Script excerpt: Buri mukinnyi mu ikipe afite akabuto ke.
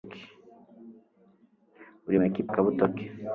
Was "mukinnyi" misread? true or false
true